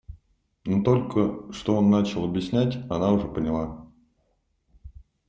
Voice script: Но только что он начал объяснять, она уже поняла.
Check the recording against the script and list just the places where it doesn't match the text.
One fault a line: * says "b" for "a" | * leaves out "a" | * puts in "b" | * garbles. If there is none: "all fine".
all fine